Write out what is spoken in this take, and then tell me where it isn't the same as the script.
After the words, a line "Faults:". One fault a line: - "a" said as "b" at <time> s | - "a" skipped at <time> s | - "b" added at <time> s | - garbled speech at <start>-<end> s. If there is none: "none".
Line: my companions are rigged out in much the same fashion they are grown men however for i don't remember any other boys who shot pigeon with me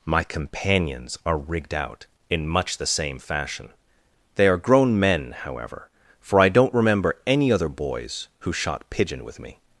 my companions are rigged out in much the same fashion they are grown men however for i don't remember any other boys who shot pigeon with me
Faults:
none